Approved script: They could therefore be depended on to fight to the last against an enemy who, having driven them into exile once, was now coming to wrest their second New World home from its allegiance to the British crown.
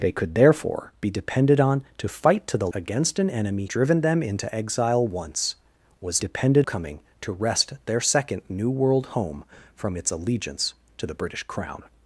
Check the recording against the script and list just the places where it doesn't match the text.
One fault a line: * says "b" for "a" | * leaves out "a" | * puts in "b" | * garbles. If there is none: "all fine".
* leaves out "last"
* leaves out "who having"
* says "depended" for "now"